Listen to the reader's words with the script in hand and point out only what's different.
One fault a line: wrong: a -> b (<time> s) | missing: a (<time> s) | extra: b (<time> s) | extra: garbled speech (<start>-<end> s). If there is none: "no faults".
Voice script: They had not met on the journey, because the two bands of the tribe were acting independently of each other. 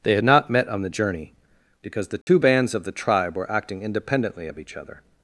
no faults